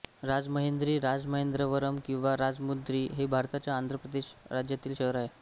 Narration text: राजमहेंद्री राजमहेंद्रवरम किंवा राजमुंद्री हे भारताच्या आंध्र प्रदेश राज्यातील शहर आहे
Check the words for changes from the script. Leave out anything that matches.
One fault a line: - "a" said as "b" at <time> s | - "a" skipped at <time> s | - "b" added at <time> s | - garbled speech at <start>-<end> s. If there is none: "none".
none